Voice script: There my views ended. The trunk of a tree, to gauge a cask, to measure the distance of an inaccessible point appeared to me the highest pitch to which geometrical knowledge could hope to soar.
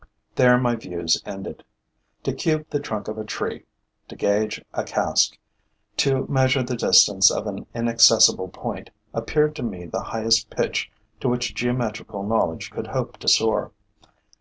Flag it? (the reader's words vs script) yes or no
yes